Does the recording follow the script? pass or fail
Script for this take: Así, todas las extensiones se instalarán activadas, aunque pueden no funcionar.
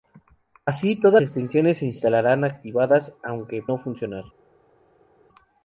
fail